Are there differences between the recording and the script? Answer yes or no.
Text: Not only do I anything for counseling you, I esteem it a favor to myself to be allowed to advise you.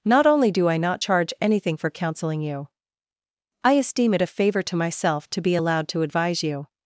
yes